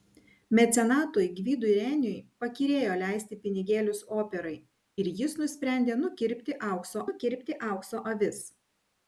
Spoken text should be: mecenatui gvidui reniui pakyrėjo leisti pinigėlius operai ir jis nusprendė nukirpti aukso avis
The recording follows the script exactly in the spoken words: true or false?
false